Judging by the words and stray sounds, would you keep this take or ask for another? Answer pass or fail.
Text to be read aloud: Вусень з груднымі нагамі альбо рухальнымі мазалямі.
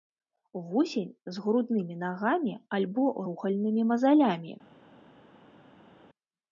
pass